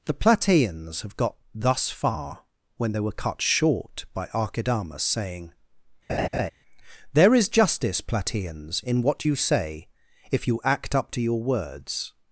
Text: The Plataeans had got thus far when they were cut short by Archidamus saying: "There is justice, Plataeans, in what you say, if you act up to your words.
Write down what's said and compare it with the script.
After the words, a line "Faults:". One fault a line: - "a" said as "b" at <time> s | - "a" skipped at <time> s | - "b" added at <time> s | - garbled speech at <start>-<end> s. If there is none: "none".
The Plataeans have got thus far when they were cut short by Archidamus saying: "There is justice, Plataeans, in what you say, if you act up to your words.
Faults:
- "had" said as "have" at 1.0 s